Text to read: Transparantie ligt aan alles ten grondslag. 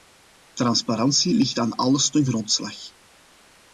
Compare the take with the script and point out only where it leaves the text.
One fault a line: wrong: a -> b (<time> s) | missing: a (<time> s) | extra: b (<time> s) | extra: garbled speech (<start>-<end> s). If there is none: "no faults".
no faults